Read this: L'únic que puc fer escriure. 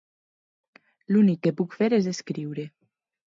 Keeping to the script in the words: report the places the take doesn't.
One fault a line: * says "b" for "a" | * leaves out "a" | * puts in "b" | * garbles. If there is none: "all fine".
* puts in "és"